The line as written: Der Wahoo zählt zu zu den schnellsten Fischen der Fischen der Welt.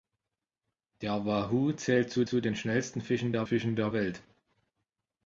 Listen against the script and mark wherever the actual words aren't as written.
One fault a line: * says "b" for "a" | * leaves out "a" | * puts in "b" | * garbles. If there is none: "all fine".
all fine